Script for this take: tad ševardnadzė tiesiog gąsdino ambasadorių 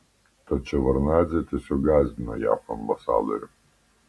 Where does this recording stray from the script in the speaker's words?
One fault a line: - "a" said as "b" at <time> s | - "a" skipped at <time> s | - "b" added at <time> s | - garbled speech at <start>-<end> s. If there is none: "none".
- "jav" added at 2.4 s